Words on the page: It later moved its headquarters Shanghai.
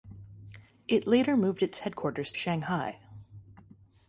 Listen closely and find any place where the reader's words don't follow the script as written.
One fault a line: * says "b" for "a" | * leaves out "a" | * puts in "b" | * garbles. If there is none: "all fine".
all fine